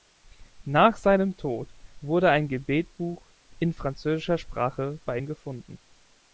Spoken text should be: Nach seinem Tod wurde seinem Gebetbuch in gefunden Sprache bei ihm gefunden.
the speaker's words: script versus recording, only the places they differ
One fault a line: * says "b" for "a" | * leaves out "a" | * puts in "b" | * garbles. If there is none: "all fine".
* says "ein" for "seinem"
* says "französischer" for "gefunden"